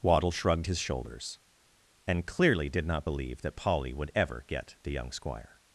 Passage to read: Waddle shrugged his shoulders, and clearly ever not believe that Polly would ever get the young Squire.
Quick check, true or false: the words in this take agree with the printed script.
false